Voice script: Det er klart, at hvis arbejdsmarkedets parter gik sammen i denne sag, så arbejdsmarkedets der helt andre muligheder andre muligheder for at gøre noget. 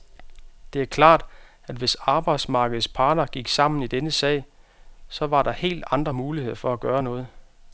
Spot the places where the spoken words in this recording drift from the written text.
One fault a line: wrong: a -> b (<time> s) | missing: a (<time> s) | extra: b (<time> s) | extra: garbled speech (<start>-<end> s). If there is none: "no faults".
wrong: arbejdsmarkedets -> var (5.3 s)
missing: andre muligheder (6.6 s)